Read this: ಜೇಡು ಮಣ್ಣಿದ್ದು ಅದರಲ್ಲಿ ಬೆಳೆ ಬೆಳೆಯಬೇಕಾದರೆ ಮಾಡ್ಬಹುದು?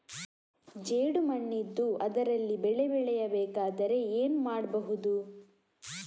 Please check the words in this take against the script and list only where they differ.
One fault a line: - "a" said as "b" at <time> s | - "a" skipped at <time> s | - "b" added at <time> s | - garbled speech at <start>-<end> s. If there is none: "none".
- "ಏನು" added at 4.1 s